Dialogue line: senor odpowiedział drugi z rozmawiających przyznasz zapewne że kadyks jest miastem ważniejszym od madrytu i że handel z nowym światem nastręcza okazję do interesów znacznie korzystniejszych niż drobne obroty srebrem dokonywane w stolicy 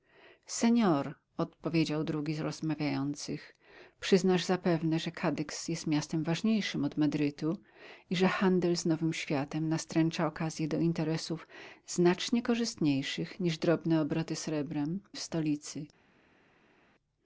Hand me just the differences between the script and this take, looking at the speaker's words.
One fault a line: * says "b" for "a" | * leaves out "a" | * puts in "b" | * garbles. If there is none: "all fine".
* leaves out "dokonywane"